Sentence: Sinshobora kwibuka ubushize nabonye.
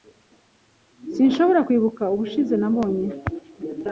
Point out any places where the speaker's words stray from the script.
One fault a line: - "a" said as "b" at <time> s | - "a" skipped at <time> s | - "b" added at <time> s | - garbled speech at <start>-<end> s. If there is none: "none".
none